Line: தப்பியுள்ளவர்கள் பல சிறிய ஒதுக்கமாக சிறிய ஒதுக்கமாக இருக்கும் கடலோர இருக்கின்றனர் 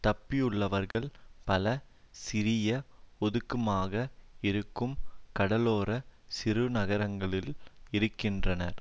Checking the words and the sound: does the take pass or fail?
fail